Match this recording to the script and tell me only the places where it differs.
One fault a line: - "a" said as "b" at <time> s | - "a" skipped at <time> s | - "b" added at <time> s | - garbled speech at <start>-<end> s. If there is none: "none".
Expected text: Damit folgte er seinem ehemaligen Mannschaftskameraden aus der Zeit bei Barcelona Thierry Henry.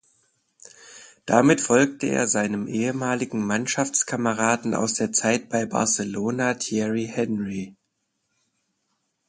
none